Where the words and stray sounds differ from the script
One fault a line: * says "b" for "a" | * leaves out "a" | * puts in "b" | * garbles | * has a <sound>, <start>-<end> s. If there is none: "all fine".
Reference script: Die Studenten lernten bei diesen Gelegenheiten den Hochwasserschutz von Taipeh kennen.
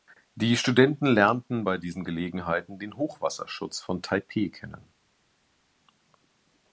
all fine